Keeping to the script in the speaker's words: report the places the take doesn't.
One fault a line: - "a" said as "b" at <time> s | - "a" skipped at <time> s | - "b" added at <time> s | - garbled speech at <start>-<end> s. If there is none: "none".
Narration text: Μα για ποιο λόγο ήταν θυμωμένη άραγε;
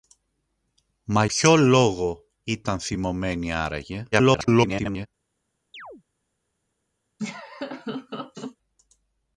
- "για" skipped at 1.2 s
- garbled speech at 4.1-5.1 s